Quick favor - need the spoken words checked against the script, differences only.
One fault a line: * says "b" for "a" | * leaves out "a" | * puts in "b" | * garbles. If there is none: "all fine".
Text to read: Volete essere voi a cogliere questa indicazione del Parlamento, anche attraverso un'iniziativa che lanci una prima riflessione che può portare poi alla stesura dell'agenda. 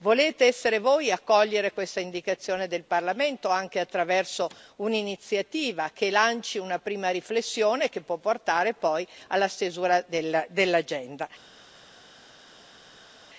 all fine